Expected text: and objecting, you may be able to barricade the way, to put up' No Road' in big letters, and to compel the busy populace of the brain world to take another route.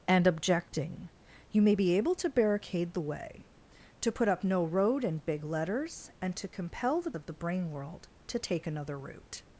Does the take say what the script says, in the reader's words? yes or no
no